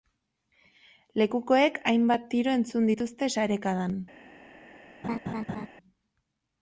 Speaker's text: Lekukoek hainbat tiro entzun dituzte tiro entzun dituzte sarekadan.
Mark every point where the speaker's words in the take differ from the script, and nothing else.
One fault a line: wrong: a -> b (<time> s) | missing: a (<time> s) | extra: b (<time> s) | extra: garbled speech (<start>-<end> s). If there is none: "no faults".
missing: tiro entzun dituzte (3.3 s)